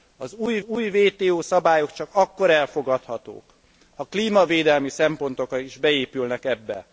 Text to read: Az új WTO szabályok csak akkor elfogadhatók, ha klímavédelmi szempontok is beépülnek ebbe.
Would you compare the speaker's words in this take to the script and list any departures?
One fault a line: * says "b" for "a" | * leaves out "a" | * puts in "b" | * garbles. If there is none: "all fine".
* puts in "új"